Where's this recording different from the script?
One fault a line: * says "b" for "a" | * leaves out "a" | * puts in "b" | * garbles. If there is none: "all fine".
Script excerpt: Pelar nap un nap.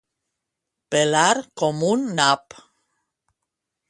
* says "com" for "nap"